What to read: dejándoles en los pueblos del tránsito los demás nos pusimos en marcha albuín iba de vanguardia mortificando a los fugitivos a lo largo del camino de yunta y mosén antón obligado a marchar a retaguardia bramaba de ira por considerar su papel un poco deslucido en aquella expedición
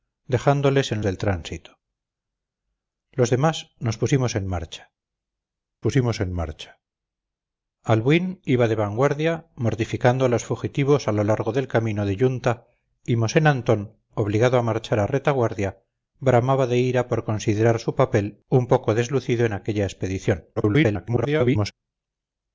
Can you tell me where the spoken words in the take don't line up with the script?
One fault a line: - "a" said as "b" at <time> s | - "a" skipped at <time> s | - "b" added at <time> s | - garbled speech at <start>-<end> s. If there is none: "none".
- "los pueblos" skipped at 1.0 s
- "pusimos en marcha" added at 5.8 s
- garbled speech at 20.6-21.7 s